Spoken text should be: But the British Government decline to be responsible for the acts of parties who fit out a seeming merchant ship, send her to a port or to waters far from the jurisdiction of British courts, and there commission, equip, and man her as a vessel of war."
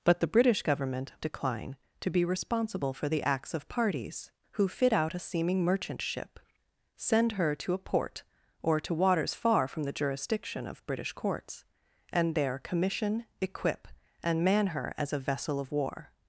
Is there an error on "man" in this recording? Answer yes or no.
no